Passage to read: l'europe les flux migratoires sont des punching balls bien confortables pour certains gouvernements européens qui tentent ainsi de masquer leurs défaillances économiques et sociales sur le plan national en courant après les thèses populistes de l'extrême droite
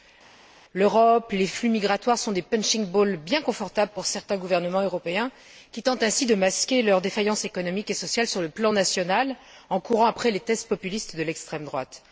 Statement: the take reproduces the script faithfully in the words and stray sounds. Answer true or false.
true